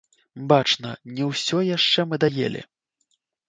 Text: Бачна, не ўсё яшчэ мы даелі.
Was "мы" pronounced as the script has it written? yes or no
yes